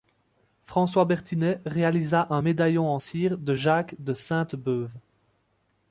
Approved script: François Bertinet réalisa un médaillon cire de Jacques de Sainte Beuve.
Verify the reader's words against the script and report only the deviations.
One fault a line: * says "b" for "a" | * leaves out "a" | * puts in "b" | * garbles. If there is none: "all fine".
* puts in "en"